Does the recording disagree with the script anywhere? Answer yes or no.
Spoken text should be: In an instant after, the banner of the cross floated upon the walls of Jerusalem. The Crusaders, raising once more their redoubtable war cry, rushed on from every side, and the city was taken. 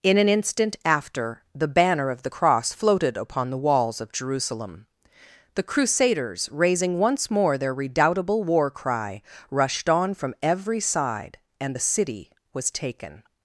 no